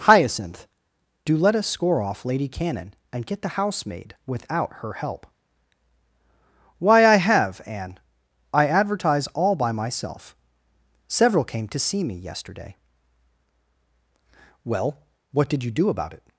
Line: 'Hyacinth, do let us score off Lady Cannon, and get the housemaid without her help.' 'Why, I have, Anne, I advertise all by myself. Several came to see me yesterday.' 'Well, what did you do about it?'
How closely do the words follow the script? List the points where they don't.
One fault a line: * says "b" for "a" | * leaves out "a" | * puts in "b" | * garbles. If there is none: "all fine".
all fine